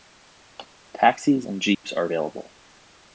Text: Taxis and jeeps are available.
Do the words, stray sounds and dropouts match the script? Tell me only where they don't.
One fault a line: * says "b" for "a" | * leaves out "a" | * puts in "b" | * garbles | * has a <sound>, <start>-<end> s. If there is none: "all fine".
* has a dropout, 1.7-1.8 s